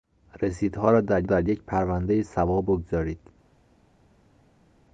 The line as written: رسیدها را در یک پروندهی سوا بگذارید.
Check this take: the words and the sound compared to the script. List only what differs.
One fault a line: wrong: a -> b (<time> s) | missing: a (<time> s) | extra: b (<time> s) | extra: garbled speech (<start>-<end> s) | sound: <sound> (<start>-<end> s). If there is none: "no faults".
extra: در (1.2 s)